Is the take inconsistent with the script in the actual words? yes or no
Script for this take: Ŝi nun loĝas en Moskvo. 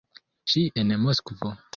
yes